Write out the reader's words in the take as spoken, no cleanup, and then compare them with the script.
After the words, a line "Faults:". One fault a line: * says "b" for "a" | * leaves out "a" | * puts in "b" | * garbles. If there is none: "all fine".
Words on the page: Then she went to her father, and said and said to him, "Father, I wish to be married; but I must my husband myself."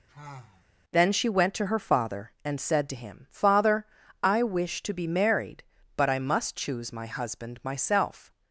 Then she went to her father, and said to him, "Father, I wish to be married; but I must choose my husband myself."
Faults:
* leaves out "and said"
* puts in "choose"